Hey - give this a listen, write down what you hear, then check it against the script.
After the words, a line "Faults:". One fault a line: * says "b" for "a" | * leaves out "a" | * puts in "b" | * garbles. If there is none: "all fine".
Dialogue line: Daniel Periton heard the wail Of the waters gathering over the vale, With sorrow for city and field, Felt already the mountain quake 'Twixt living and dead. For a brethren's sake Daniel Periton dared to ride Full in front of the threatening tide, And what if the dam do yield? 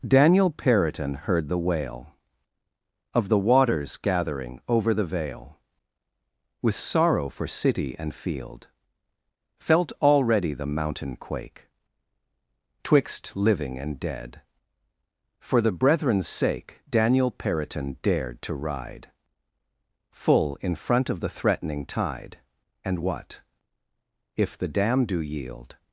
Daniel Periton heard the wail Of the waters gathering over the vale, With sorrow for city and field, Felt already the mountain quake 'Twixt living and dead. For the brethren's sake Daniel Periton dared to ride Full in front of the threatening tide, And what if the dam do yield?
Faults:
* says "the" for "a"